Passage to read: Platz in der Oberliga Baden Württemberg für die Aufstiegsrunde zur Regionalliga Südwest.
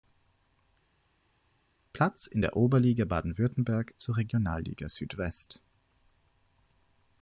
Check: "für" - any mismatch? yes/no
yes